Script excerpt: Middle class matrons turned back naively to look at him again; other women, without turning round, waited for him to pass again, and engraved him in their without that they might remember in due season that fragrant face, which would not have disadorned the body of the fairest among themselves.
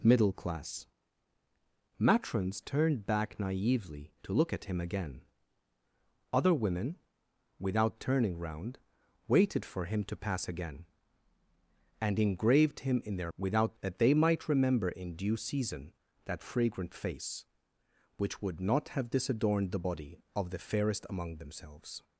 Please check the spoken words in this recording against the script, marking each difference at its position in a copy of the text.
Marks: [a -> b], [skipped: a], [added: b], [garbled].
Middle class matrons turned back naively to look at him again; other women, without turning round, waited for him to pass again, and engraved him in their without that they might remember in due season that fragrant face, which would not have disadorned the body of the fairest among themselves.